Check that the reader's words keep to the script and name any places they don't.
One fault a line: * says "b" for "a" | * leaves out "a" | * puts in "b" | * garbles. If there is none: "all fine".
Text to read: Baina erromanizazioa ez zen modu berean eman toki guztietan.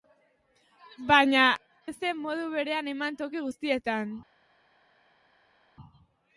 * leaves out "erromanizazioa"